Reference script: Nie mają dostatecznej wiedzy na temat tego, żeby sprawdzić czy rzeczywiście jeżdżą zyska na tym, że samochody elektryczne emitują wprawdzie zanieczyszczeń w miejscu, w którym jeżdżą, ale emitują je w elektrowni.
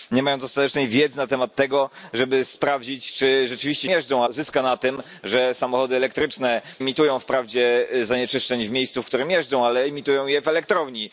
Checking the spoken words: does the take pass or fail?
pass